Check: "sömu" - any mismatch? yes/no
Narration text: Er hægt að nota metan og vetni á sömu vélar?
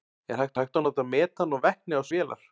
yes